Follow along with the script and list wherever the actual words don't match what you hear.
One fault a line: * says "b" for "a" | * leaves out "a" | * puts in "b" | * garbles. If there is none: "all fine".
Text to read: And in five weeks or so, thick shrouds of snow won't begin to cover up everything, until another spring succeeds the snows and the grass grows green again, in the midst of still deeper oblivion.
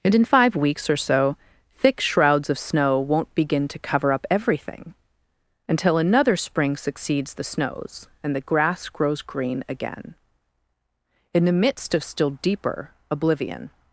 all fine